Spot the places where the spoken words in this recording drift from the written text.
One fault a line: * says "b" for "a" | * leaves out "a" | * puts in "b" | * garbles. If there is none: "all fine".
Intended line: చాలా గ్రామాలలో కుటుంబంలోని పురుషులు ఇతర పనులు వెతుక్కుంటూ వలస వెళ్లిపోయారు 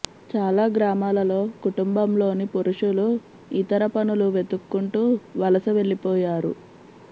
all fine